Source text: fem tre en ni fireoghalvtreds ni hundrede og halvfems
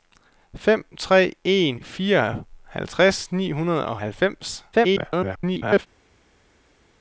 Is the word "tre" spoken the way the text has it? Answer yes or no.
yes